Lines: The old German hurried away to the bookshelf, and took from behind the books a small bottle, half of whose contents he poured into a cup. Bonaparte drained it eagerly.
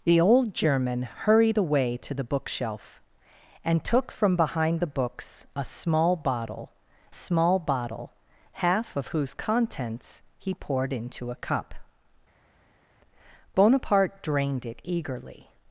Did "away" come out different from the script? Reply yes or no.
no